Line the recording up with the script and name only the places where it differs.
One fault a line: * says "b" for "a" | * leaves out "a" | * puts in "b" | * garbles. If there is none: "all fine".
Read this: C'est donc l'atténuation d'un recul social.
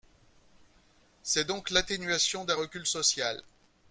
all fine